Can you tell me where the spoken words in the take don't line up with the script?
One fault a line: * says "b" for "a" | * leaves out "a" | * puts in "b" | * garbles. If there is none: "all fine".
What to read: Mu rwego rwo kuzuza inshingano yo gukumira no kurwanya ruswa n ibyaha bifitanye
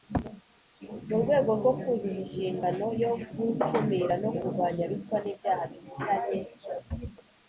all fine